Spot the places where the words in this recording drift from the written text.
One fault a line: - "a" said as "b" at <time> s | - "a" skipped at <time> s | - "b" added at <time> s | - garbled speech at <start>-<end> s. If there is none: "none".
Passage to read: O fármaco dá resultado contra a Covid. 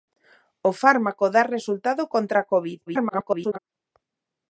- garbled speech at 2.9-3.6 s